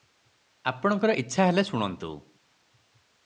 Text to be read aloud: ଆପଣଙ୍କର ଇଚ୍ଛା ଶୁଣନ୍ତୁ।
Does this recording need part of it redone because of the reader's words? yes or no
yes